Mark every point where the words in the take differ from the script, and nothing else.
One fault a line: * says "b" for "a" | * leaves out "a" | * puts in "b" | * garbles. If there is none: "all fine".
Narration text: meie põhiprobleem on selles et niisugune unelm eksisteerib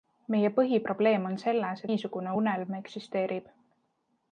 * leaves out "et"